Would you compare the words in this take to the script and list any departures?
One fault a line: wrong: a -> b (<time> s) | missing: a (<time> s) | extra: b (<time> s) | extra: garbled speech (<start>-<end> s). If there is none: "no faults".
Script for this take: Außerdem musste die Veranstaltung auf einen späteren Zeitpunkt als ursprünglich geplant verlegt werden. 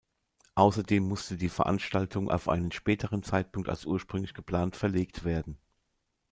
no faults